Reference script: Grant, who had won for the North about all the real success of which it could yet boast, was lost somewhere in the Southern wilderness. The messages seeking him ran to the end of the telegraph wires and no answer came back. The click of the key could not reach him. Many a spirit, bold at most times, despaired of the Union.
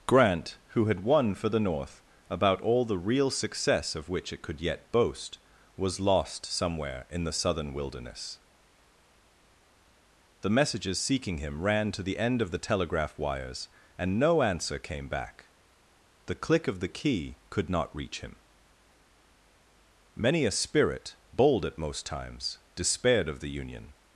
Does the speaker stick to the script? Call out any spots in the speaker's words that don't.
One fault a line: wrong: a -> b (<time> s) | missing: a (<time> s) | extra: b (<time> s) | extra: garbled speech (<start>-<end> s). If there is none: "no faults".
no faults